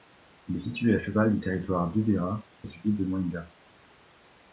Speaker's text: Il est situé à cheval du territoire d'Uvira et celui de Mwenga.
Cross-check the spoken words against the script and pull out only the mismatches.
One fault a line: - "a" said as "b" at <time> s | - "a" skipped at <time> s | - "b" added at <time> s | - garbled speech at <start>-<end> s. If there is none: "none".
none